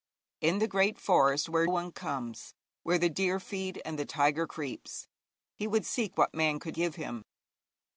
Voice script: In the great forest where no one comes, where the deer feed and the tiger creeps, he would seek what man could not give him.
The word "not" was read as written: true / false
false